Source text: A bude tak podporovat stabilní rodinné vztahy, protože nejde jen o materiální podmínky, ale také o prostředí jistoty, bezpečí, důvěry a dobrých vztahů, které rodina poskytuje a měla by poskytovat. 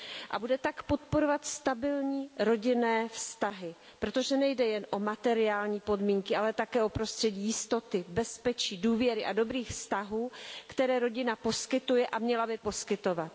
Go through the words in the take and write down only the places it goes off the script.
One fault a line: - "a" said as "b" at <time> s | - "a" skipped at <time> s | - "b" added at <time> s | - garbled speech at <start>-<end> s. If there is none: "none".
none